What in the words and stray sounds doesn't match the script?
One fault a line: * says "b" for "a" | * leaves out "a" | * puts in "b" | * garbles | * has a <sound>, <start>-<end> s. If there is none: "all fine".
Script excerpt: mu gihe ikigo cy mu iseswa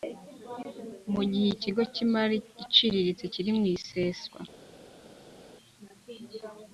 * puts in "imari iciriritse kiri"